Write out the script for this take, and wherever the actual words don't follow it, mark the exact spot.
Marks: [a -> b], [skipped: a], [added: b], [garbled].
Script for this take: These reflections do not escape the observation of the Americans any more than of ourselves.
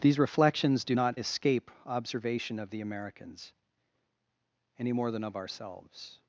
These reflections do not escape [skipped: the] observation of the Americans any more than of ourselves.